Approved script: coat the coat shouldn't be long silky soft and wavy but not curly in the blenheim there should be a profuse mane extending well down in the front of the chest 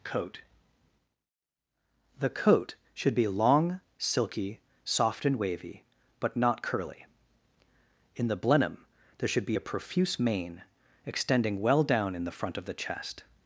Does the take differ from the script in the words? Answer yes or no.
yes